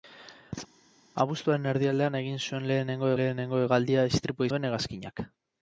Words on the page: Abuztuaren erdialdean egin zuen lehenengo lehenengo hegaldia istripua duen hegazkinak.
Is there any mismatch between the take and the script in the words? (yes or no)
no